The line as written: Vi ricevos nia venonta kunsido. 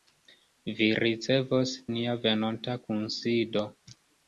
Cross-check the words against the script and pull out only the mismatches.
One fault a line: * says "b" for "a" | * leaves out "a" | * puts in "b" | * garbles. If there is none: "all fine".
all fine